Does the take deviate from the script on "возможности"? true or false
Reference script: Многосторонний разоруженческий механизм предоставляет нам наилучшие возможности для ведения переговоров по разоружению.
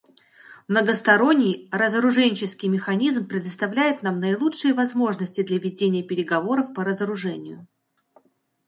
false